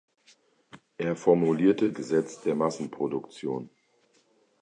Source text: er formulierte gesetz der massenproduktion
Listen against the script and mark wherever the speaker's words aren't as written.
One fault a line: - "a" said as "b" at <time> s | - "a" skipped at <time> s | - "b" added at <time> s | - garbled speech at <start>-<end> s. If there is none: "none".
none